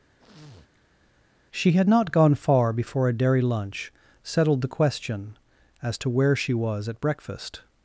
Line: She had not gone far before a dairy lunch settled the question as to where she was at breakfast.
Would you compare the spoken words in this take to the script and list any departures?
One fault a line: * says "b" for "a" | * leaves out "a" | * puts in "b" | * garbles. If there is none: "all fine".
all fine